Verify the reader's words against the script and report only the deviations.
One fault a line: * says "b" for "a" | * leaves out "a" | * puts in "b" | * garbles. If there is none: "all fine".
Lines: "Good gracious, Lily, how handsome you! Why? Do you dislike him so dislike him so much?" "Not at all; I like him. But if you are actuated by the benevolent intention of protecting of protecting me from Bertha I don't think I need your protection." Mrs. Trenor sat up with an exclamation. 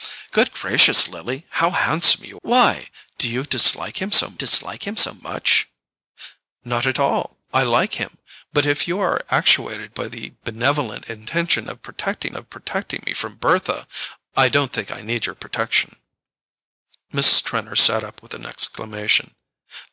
all fine